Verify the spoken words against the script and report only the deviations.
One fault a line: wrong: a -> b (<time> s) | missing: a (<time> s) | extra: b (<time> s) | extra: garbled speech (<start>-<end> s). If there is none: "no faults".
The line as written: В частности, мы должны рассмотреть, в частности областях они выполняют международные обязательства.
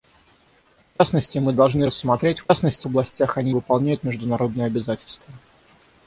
no faults